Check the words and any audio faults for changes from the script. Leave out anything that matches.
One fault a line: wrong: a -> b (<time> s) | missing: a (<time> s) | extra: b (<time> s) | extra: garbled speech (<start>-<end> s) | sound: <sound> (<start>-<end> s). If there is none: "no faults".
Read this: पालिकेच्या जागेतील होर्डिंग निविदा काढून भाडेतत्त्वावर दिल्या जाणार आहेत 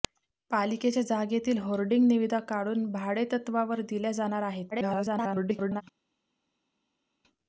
extra: garbled speech (4.7-5.8 s)